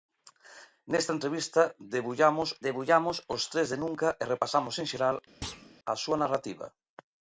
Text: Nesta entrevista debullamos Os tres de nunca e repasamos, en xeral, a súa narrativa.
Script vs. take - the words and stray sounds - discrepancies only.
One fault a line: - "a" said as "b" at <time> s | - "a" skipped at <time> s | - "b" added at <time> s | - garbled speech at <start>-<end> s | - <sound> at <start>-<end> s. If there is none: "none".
- "debullamos" added at 2.6 s
- thud at 5.4-5.7 s